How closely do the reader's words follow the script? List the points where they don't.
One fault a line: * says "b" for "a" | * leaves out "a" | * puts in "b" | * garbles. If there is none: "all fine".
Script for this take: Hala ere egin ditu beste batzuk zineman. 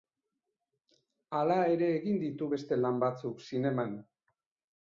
* puts in "lan"